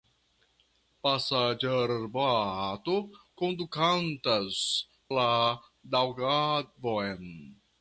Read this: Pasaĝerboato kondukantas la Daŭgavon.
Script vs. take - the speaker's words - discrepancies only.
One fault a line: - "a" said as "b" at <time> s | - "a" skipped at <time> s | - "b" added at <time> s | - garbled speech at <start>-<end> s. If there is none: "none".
none